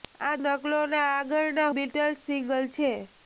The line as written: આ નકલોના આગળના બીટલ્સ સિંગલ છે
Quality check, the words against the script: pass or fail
pass